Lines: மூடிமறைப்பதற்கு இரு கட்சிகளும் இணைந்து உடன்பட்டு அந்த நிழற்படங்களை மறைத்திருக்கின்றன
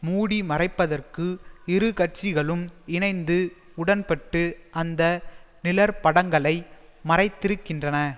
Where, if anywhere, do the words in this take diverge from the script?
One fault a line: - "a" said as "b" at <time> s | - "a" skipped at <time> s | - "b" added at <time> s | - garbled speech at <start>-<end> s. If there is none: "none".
none